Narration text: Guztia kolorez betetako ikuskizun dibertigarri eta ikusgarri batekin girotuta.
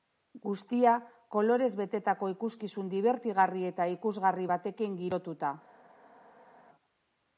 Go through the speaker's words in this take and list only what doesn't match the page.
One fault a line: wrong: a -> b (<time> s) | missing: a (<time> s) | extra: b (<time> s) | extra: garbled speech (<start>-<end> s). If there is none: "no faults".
no faults